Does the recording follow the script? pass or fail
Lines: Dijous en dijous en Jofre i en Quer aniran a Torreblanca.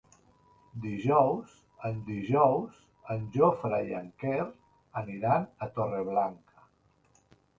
pass